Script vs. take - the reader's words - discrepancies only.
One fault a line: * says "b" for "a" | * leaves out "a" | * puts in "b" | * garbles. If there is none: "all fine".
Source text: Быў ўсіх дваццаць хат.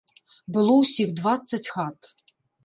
* says "Было" for "Быў"